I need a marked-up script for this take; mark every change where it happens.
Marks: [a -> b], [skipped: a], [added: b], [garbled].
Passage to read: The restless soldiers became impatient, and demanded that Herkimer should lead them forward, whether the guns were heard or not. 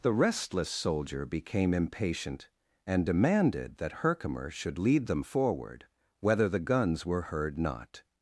The restless [soldiers -> soldier] became impatient, and demanded that Herkimer should lead them forward, whether the guns were heard [skipped: or] not.